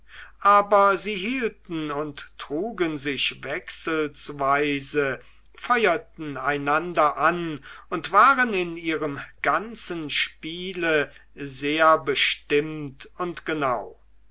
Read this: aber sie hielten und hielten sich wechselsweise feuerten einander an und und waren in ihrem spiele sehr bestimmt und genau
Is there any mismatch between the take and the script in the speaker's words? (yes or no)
yes